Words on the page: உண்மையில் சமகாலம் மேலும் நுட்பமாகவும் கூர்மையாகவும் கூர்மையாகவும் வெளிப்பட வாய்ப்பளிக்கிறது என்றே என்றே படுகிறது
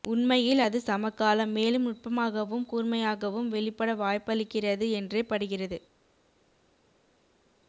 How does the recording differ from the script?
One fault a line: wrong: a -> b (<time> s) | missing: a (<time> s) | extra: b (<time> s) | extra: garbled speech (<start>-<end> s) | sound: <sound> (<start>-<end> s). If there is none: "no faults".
extra: அது (0.6 s)
missing: கூர்மையாகவும் (3.5 s)
missing: என்றே (5.2 s)